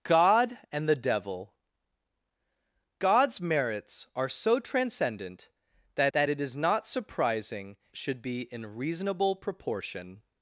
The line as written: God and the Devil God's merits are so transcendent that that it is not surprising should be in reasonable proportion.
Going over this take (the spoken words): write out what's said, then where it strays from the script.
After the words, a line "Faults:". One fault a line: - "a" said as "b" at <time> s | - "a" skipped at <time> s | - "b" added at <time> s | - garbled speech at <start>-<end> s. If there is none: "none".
God and the Devil God's merits are so transcendent that that it is not surprising should be in reasonable proportion.
Faults:
none